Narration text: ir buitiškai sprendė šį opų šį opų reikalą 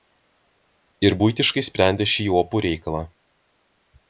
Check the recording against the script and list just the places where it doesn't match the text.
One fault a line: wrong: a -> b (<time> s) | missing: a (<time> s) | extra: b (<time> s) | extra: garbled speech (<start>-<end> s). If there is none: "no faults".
missing: šį opų (2.6 s)